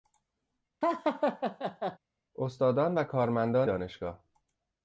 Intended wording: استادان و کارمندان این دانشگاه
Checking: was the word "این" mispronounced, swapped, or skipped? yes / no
yes